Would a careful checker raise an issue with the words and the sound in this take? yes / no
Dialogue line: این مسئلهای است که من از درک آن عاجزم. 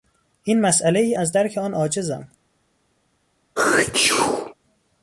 yes